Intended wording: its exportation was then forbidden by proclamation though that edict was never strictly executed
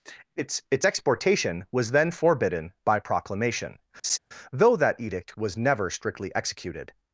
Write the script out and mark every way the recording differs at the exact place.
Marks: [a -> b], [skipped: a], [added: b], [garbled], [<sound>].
its [added: its] exportation was then forbidden by proclamation [laugh] though that edict was never strictly executed